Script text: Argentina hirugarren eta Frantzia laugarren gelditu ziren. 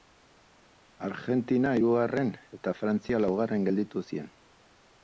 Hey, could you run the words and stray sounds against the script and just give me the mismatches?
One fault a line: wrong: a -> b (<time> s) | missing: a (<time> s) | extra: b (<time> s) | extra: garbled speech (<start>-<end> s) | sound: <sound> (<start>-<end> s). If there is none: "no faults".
no faults